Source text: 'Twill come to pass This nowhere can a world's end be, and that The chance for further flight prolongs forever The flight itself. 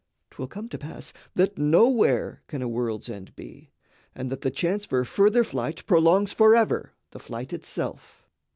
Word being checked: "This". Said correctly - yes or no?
no